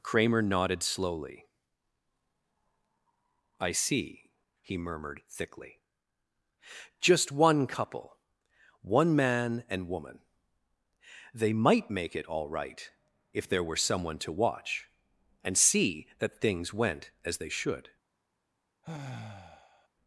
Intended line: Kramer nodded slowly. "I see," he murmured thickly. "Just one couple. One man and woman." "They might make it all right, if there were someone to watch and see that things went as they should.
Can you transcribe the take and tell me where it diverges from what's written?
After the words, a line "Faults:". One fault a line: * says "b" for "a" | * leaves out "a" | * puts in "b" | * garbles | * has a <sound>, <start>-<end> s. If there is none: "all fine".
Kramer nodded slowly. "I see," he murmured thickly. "Just one couple. One man and woman." "They might make it all right, if there were someone to watch and see that things went as they should.
Faults:
* has a sigh, 18.8-19.9 s